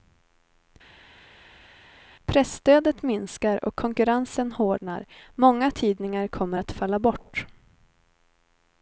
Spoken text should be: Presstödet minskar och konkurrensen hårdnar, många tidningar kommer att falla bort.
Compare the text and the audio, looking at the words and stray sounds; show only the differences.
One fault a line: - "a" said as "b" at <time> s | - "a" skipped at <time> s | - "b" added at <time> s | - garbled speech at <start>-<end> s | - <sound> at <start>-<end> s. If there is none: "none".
none